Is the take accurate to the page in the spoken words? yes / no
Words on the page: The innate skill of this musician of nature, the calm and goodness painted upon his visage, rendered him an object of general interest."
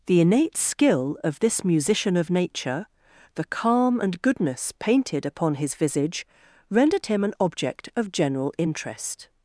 yes